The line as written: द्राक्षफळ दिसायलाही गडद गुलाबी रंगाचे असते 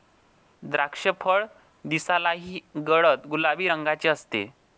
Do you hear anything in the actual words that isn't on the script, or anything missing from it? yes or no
no